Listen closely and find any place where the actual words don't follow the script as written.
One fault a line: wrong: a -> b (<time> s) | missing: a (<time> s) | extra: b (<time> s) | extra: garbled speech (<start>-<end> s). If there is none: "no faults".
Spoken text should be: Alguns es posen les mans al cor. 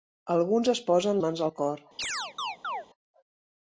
missing: les (1.2 s)